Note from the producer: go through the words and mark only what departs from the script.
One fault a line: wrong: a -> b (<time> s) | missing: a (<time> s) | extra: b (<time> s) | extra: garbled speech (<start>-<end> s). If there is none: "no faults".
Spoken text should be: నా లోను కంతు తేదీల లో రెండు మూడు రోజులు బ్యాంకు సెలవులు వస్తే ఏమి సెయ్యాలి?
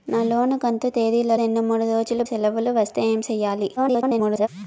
missing: లో (1.3 s)
missing: బ్యాంకు (2.2 s)
extra: garbled speech (3.8-4.5 s)